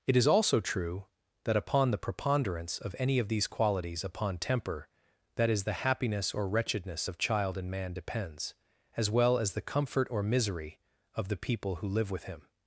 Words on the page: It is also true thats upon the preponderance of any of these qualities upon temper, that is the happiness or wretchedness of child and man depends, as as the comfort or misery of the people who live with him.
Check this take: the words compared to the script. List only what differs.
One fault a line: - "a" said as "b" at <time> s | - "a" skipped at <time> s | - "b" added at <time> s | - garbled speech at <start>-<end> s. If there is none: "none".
- "thats" said as "that" at 1.4 s
- "well" added at 9.1 s